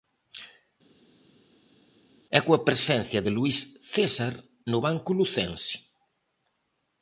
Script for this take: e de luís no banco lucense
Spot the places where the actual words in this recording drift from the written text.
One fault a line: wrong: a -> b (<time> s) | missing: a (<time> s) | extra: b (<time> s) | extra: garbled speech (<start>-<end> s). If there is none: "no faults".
extra: coa presencia (2.4 s)
extra: césar (3.9 s)